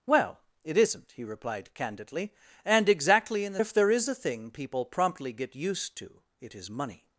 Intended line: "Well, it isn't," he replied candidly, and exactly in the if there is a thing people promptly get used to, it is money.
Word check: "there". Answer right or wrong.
right